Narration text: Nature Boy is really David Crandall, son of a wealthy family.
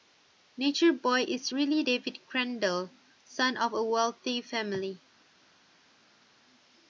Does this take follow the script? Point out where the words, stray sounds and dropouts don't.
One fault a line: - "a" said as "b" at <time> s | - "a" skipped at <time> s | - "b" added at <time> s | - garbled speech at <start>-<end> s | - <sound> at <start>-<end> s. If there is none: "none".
none